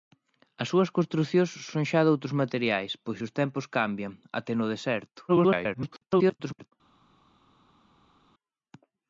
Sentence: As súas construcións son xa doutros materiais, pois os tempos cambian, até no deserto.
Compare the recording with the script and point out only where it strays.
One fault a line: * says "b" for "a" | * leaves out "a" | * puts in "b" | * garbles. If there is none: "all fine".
* garbles